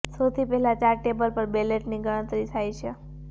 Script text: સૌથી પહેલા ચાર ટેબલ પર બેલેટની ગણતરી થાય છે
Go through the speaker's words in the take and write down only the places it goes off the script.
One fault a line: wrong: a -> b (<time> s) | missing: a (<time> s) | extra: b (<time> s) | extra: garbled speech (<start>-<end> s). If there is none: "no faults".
no faults